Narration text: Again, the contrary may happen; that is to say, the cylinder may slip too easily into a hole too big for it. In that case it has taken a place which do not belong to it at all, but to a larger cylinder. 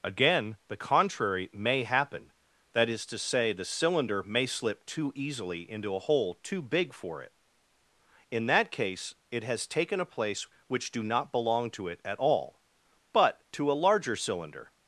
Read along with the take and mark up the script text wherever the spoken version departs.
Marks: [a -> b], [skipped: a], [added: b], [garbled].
Again, the contrary may happen; that is to say, the cylinder may slip too easily into a hole too big for it. In that case it has taken a place which do not belong to it at all, but to a larger cylinder.